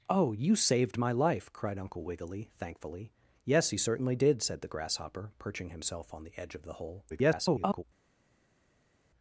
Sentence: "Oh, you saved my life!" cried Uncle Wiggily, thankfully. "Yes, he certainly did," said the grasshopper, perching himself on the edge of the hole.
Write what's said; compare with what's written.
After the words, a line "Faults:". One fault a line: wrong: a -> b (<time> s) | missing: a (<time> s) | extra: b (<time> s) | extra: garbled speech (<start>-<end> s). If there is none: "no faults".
"Oh, you saved my life!" cried Uncle Wiggily, thankfully. "Yes, he certainly did," said the grasshopper, perching himself on the edge of the hole. [garbled]
Faults:
extra: garbled speech (7.1-7.8 s)